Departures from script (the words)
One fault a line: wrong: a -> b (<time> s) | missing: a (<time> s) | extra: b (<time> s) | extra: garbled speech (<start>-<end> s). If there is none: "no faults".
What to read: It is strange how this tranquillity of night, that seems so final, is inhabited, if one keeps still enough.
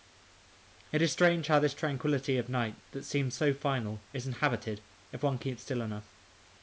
no faults